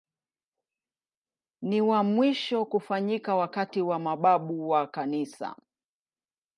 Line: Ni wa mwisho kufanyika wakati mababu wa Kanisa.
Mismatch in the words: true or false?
true